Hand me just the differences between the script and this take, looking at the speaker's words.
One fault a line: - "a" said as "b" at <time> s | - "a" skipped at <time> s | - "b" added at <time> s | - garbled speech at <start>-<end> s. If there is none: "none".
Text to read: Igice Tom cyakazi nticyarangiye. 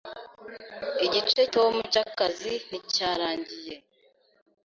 none